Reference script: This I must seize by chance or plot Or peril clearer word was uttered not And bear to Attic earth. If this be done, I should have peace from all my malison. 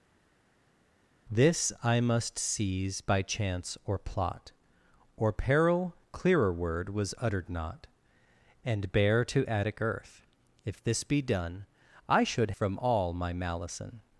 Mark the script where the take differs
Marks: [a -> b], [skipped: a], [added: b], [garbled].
This I must seize by chance or plot Or peril clearer word was uttered not And bear to Attic earth. If this be done, I should [skipped: have peace] from all my malison.